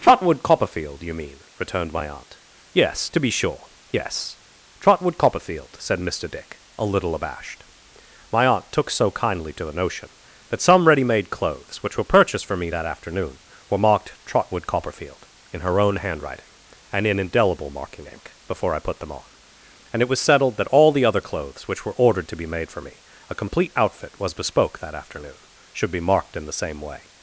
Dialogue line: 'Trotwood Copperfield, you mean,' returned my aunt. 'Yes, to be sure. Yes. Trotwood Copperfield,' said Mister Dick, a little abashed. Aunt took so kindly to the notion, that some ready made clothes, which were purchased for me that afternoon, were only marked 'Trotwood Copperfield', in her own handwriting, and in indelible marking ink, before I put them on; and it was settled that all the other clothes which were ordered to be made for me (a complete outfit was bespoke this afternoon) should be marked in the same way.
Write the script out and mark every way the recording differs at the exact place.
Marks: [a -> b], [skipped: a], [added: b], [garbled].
'Trotwood Copperfield, you mean,' returned my aunt. 'Yes, to be sure. Yes. Trotwood Copperfield,' said Mister Dick, a little abashed. [added: My] Aunt took so kindly to the notion, that some ready made clothes, which were purchased for me that afternoon, were [skipped: only] marked 'Trotwood Copperfield', in her own handwriting, and in indelible marking ink, before I put them on; and it was settled that all the other clothes which were ordered to be made for me (a complete outfit was bespoke [this -> that] afternoon) should be marked in the same way.